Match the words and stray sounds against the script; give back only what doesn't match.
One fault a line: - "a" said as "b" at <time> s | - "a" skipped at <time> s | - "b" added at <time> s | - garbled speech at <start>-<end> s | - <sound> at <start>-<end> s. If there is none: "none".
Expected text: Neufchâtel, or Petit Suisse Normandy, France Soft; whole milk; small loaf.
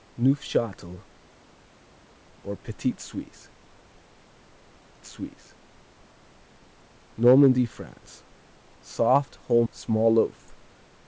- "Suisse" added at 5.0 s
- "milk" skipped at 9.7 s